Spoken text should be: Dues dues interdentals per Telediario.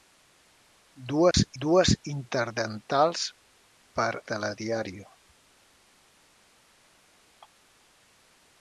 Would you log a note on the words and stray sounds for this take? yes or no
yes